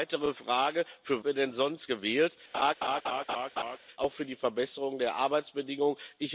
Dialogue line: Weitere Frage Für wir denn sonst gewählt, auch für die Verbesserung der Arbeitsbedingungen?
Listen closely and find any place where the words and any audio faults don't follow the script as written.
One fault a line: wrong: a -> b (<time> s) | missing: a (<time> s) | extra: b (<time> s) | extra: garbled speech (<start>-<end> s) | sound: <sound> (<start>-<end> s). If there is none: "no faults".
sound: laugh (2.5-3.8 s)